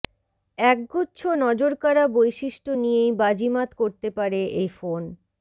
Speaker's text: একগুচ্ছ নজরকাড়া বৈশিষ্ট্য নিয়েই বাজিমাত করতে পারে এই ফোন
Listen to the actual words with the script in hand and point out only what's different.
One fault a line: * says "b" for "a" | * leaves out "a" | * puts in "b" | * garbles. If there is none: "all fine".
all fine